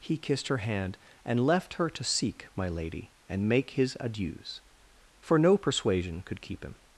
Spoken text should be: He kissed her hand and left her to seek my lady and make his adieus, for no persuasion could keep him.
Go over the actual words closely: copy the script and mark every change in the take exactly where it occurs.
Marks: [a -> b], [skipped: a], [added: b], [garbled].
He kissed her hand and left her to seek my lady and make his adieus, for no persuasion could keep him.